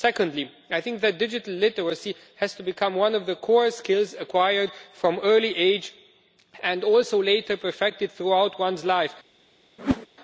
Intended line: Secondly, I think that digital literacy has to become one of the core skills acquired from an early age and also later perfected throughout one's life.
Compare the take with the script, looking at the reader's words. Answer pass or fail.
pass